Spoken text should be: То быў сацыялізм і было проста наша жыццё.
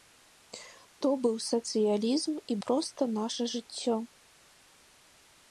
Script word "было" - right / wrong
wrong